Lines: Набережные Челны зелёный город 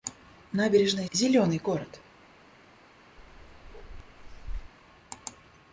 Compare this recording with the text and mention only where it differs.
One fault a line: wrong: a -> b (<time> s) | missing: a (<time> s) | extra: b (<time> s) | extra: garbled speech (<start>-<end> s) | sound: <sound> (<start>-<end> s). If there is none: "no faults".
missing: Челны (1.1 s)
sound: bark (3.2-4.7 s)